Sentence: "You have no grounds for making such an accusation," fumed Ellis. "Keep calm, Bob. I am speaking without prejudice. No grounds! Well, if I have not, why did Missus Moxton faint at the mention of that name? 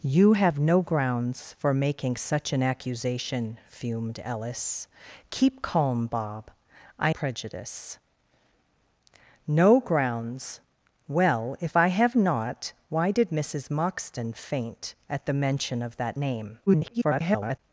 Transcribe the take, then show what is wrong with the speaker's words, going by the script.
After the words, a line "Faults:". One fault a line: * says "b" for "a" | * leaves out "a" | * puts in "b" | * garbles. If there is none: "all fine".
"You have no grounds for making such an accusation," fumed Ellis. "Keep calm, Bob. I prejudice. No grounds! Well, if I have not, why did Missus Moxton faint at the mention of that name? [garbled]
Faults:
* leaves out "am speaking without"
* garbles